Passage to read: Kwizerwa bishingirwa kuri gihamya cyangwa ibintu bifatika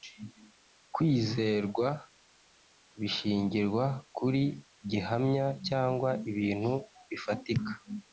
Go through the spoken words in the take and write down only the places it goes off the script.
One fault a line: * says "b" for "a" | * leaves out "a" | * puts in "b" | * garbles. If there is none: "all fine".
all fine